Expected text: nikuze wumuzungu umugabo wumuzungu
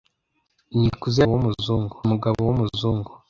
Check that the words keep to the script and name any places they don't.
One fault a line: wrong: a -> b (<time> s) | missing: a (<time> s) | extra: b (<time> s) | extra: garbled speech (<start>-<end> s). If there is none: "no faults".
no faults